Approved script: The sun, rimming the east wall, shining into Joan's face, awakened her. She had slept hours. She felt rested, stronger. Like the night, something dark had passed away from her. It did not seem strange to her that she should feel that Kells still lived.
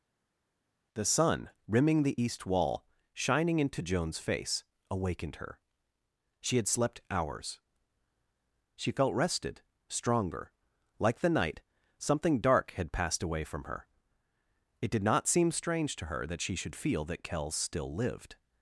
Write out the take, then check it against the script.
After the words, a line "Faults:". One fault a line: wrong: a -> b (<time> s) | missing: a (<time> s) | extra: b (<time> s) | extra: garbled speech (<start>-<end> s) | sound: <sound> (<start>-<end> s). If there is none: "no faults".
The sun, rimming the east wall, shining into Joan's face, awakened her. She had slept hours. She felt rested, stronger. Like the night, something dark had passed away from her. It did not seem strange to her that she should feel that Kells still lived.
Faults:
no faults